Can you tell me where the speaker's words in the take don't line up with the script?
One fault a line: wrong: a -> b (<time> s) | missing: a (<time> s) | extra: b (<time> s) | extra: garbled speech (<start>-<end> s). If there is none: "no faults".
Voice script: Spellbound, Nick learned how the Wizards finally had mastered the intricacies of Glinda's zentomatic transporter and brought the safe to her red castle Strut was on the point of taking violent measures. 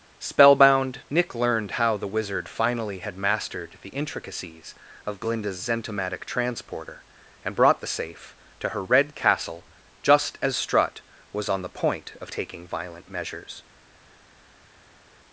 wrong: Wizards -> Wizard (2.1 s)
extra: just as (10.0 s)